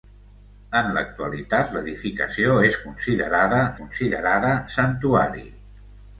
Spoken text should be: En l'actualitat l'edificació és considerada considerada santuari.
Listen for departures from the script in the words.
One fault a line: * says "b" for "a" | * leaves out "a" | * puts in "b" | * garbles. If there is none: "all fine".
all fine